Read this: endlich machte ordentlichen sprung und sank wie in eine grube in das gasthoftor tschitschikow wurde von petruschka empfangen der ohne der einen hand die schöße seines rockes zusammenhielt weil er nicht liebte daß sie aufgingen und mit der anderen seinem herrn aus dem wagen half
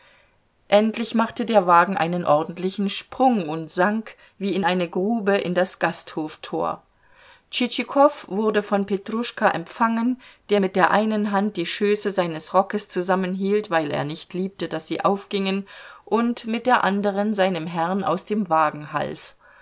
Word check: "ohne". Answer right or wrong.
wrong